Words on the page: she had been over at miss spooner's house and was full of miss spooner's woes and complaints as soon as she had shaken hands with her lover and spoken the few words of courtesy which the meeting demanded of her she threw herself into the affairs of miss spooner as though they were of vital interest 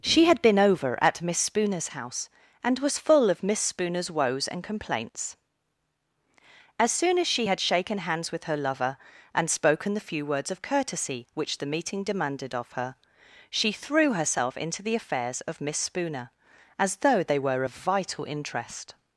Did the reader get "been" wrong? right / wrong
right